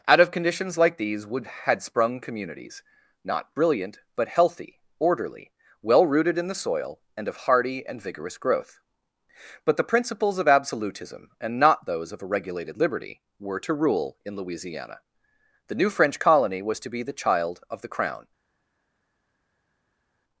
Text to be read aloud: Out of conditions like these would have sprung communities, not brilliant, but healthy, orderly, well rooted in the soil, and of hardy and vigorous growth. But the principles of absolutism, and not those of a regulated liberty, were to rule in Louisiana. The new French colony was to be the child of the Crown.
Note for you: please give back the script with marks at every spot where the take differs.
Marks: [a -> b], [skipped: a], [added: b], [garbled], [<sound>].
Out of conditions like these would [have -> had] sprung communities, not brilliant, but healthy, orderly, well rooted in the soil, and of hardy and vigorous growth. But the principles of absolutism, and not those of a regulated liberty, were to rule in Louisiana. The new French colony was to be the child of the Crown.